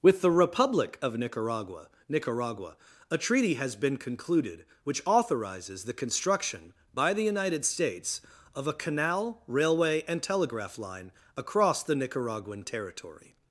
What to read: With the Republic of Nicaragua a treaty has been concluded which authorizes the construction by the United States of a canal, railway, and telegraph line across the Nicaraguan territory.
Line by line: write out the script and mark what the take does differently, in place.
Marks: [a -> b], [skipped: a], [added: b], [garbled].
With the Republic of Nicaragua [added: Nicaragua] a treaty has been concluded which authorizes the construction by the United States of a canal, railway, and telegraph line across the Nicaraguan territory.